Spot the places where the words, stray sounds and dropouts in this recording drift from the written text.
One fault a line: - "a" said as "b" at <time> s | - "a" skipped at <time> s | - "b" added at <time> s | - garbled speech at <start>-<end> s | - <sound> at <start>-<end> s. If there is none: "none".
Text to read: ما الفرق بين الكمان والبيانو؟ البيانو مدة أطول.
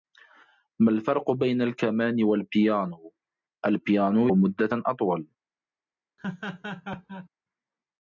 - laugh at 6.2-7.3 s